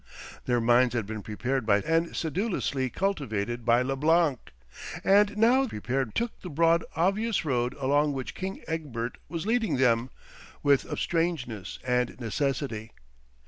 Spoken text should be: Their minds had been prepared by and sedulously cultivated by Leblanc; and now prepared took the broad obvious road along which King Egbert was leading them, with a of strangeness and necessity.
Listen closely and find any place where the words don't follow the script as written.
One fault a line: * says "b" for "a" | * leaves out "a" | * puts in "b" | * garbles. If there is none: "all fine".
all fine